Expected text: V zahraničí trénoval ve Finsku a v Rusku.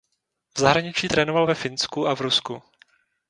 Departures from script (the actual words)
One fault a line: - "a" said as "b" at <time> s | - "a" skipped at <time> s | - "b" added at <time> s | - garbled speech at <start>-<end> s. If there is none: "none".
none